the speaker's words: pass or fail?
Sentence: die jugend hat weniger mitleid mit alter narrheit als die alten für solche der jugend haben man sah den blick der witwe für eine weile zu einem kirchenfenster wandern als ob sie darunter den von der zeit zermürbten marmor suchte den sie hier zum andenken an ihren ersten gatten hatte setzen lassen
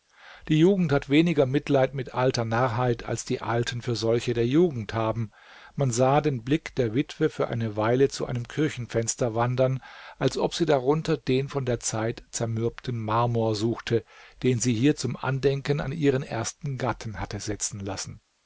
pass